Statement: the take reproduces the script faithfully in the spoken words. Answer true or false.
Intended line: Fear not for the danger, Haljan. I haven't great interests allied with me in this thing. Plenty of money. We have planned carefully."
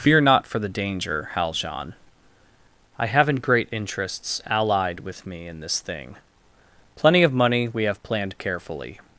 true